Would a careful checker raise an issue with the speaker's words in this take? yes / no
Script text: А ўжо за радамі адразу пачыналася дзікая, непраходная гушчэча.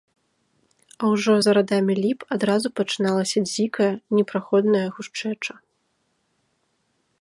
yes